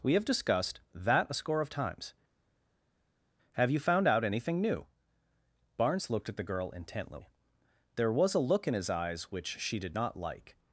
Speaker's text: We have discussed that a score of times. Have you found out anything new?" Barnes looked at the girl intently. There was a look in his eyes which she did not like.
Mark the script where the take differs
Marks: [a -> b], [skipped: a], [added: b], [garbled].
We have discussed that a score of times. Have you found out anything new?" Barnes looked at the girl intently. There was a look in his eyes which she did not like.